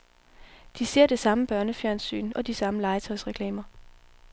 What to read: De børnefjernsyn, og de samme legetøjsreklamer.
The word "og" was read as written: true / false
true